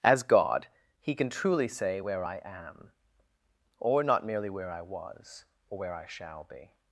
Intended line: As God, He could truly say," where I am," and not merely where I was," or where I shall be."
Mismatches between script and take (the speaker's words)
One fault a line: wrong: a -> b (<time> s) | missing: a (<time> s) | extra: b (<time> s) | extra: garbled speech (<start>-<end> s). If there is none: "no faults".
wrong: could -> can (1.1 s)
wrong: and -> or (3.8 s)